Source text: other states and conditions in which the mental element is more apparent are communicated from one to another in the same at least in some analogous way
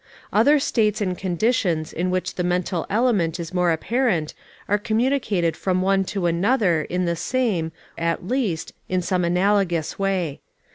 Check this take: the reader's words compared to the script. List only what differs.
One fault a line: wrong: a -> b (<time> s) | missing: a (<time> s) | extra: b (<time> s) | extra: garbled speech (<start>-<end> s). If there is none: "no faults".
no faults